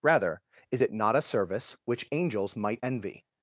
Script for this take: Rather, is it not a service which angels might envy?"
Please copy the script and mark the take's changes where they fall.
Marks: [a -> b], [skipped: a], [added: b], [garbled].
Rather, is it not a service which angels might envy?"